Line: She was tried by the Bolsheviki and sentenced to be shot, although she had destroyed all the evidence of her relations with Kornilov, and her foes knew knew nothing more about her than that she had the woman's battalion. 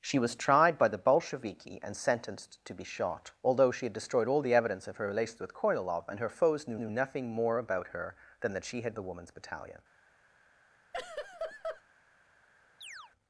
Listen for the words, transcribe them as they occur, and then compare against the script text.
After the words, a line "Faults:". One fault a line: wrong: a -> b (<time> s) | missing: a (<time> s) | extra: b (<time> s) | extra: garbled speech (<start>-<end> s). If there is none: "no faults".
She was tried by the Bolsheviki and sentenced to be shot, although she had destroyed all the evidence of her relations with Kornilov, and her foes knew knew nothing more about her than that she had the woman's battalion.
Faults:
no faults